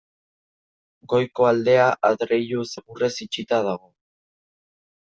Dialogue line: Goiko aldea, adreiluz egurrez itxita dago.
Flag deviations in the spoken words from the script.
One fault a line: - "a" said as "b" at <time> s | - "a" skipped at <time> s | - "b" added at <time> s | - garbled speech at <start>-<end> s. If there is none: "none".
none